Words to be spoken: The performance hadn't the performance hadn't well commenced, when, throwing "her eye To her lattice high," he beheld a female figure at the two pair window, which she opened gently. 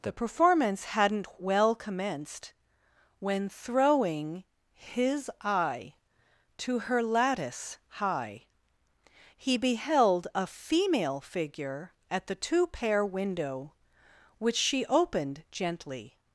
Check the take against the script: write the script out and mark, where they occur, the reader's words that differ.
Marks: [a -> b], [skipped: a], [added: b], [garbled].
The performance hadn't [skipped: the performance hadn't] well commenced, when, throwing ["her -> his] eye To her lattice high," he beheld a female figure at the two pair window, which she opened gently.